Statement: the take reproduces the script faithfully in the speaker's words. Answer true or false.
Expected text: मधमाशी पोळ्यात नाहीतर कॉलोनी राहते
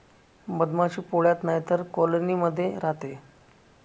false